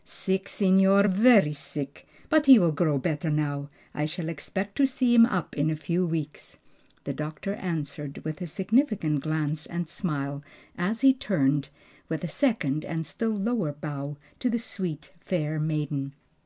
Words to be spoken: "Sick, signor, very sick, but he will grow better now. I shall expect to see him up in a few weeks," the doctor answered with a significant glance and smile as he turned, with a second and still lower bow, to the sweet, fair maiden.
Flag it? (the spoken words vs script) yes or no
no